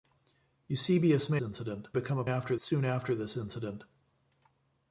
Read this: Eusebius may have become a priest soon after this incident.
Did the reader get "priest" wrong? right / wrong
wrong